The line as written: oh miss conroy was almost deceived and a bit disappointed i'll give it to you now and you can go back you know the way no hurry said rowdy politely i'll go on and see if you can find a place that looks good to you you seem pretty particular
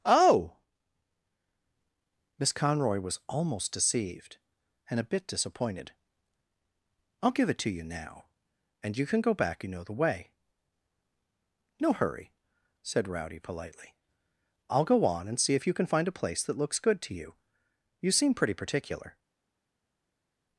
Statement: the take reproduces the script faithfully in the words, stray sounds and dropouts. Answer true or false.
true